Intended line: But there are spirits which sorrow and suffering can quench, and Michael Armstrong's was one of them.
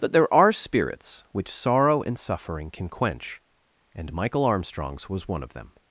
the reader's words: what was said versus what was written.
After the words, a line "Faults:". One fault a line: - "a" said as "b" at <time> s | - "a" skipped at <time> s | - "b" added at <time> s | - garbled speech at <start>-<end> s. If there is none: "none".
But there are spirits which sorrow and suffering can quench, and Michael Armstrong's was one of them.
Faults:
none